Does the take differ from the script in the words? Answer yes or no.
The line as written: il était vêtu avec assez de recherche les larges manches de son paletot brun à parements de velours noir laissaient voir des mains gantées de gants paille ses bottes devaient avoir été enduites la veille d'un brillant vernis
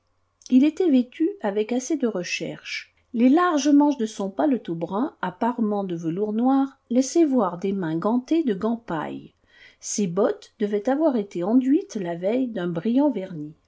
no